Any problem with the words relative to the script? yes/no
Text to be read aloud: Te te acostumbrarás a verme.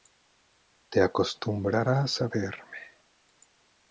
yes